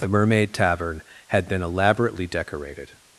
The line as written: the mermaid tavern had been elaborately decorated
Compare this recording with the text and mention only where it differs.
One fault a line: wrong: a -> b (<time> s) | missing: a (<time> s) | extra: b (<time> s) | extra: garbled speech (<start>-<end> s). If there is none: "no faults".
no faults